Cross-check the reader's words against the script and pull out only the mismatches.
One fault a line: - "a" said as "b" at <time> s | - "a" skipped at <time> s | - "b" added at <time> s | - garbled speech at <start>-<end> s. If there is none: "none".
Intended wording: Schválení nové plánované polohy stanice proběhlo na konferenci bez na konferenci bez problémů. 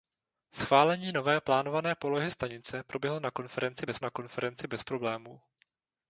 none